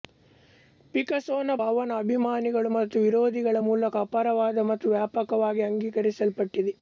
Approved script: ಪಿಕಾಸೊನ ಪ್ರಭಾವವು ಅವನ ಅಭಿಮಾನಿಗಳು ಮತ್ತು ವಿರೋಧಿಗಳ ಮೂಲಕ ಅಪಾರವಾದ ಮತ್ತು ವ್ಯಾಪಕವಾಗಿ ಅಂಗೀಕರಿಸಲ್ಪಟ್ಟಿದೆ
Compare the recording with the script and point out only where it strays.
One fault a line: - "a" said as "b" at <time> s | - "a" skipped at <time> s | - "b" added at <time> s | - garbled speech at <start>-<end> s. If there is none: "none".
- "ಪ್ರಭಾವವು" skipped at 1.6 s